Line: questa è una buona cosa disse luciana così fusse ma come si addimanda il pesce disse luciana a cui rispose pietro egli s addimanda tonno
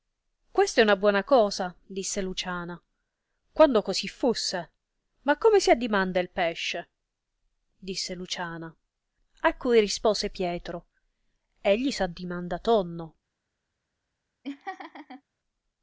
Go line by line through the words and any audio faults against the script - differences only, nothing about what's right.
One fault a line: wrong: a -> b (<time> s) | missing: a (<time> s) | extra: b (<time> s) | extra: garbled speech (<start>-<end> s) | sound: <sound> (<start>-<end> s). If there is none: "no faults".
extra: quando (3.5 s)
sound: laugh (14.4-15.2 s)